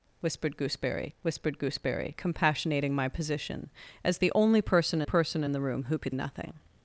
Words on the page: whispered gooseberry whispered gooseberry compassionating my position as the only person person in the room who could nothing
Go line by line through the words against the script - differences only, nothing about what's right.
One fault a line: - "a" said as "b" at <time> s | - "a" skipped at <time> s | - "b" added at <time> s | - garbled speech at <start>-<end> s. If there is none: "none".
none